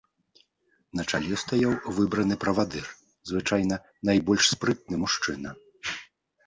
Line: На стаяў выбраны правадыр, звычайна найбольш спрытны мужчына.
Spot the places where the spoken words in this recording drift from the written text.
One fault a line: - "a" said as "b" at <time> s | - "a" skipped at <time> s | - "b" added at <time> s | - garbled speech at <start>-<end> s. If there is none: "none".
- "чале" added at 1.1 s